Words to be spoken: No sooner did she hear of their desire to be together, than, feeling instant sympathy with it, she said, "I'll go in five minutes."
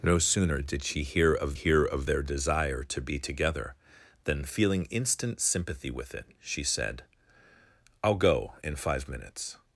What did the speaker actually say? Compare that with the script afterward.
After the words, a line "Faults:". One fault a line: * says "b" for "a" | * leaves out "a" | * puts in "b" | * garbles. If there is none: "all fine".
No sooner did she hear of hear of their desire to be together, than, feeling instant sympathy with it, she said, "I'll go in five minutes."
Faults:
* puts in "hear of"